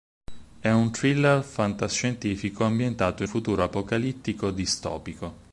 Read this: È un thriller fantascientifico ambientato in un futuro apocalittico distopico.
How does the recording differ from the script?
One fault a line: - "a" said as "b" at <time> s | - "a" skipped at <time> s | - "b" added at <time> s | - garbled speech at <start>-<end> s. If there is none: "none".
- "un" skipped at 3.3 s